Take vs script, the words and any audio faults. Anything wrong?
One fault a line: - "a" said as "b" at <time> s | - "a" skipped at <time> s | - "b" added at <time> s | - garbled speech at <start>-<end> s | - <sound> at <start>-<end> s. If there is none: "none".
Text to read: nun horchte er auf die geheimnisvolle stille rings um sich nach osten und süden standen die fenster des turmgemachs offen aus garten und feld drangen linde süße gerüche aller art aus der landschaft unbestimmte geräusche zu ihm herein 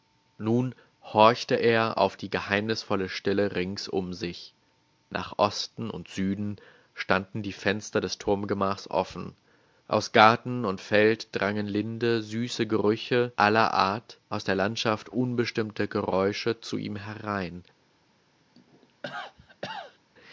- cough at 18.5-20.0 s